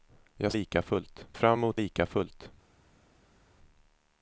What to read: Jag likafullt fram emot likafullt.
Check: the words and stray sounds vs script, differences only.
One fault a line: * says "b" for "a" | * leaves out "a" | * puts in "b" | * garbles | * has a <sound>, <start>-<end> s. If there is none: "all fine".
all fine